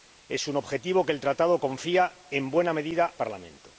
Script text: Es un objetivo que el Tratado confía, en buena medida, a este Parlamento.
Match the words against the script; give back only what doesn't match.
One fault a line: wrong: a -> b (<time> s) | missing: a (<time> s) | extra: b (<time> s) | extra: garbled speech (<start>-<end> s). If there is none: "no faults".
missing: a este (3.1 s)